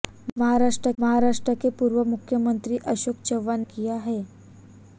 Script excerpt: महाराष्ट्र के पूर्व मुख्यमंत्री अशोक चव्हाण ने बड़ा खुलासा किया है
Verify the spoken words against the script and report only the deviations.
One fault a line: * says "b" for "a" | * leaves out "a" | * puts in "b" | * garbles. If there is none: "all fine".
* puts in "महाराष्ट्र"
* leaves out "ने बड़ा खुलासा"